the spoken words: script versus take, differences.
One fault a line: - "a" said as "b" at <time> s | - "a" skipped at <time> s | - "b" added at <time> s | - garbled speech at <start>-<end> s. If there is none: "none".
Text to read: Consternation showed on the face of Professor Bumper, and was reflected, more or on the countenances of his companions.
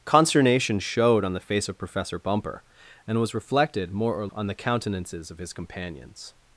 none